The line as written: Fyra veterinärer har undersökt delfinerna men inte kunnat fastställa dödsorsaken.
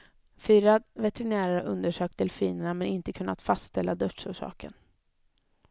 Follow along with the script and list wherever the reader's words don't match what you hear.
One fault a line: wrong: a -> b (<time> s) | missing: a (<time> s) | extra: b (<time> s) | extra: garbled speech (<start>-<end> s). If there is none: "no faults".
no faults